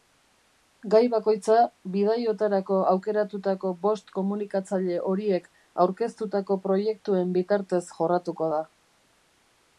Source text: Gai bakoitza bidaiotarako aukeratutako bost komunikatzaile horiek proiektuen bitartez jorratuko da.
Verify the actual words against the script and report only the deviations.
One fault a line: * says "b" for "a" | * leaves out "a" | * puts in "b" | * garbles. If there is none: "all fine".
* puts in "aurkeztutako"